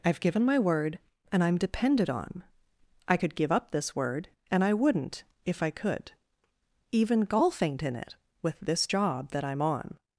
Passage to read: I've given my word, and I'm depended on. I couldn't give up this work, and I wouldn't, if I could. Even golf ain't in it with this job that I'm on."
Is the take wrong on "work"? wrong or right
wrong